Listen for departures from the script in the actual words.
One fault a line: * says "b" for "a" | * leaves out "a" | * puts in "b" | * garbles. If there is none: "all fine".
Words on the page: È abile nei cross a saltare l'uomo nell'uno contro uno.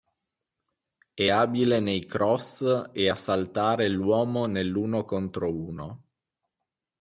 * puts in "e"